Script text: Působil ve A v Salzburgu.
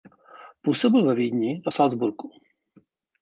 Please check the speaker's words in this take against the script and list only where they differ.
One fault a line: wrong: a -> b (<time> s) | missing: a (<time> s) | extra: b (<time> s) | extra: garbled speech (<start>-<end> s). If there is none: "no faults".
extra: Vídni (1.1 s)